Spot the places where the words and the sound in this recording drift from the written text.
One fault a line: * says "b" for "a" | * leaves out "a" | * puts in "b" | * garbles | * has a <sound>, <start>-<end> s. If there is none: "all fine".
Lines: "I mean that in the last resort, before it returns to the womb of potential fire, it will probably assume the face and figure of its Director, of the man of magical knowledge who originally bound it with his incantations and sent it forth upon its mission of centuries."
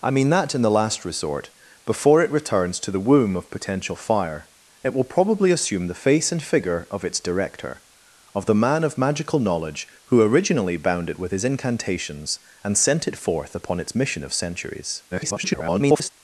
* garbles